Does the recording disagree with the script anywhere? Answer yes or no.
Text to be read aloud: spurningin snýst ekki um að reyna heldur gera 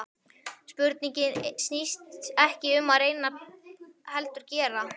no